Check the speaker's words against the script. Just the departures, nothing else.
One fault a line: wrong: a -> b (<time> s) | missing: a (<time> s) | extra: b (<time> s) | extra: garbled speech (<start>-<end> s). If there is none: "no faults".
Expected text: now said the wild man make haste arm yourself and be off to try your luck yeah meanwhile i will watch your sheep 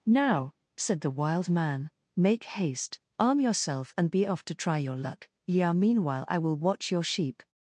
no faults